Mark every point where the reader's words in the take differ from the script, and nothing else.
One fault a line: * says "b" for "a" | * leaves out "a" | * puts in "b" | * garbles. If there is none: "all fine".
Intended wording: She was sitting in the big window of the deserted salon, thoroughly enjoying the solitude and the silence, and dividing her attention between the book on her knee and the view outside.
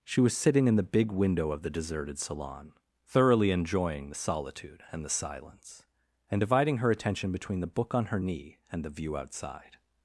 all fine